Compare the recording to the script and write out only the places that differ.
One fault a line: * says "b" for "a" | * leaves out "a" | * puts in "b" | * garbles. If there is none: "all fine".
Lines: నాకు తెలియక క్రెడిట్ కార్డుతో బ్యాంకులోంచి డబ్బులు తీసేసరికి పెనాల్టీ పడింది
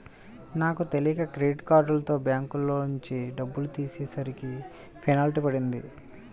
all fine